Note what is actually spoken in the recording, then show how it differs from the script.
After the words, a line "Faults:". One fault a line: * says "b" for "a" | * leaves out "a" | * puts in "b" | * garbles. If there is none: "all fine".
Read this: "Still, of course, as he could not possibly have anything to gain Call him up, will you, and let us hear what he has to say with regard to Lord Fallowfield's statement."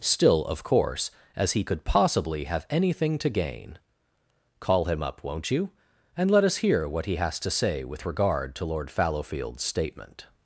"Still, of course, as he could possibly have anything to gain Call him up, won't you, and let us hear what he has to say with regard to Lord Fallowfield's statement."
Faults:
* leaves out "not"
* says "won't" for "will"